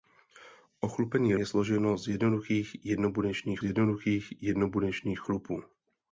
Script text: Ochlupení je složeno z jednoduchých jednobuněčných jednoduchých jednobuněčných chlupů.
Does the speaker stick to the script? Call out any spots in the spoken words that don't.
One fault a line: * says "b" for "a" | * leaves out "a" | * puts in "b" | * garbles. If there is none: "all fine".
all fine